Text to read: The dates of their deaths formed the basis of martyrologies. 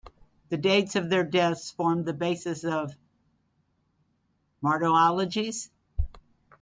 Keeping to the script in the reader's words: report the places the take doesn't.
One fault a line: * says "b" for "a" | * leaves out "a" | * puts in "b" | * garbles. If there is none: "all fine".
all fine